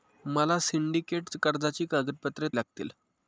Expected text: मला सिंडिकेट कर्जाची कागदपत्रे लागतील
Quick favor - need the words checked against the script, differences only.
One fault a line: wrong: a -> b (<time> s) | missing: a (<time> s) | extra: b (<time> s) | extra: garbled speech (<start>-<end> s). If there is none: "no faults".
no faults